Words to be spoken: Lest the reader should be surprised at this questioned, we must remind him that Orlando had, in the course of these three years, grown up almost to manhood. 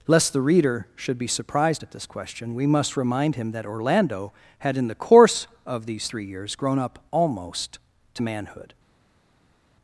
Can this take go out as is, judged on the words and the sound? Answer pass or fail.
fail